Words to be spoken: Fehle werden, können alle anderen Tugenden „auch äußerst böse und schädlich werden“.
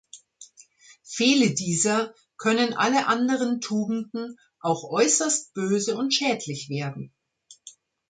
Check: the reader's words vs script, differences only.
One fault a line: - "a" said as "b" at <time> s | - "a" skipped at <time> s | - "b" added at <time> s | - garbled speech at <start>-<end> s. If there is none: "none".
- "werden" said as "dieser" at 1.5 s